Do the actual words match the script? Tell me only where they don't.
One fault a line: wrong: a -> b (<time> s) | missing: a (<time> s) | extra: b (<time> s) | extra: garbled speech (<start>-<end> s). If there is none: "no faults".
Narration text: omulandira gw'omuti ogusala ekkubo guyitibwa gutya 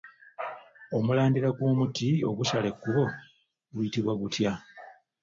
no faults